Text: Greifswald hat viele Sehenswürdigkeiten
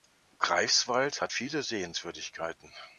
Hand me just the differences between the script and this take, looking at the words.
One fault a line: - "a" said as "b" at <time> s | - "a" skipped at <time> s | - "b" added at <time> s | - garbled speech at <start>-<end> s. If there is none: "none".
none